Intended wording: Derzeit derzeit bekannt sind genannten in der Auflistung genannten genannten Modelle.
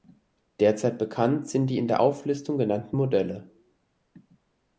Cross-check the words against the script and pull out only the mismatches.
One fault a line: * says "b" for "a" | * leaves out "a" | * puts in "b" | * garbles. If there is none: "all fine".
* leaves out "derzeit"
* says "die" for "genannten"
* leaves out "genannten"